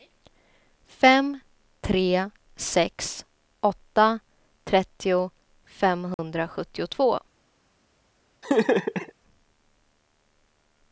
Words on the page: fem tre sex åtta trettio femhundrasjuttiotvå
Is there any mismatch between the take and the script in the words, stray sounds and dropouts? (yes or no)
yes